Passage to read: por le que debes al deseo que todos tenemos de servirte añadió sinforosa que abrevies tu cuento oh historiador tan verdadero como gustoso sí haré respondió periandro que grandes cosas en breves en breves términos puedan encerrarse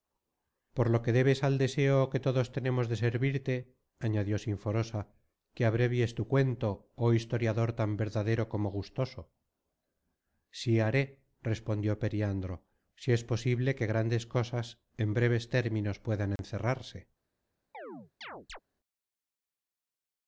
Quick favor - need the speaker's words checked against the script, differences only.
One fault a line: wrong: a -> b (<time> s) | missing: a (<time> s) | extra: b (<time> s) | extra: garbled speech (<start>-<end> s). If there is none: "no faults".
wrong: le -> lo (0.9 s)
extra: si es posible (12.9 s)
missing: en breves (15.5 s)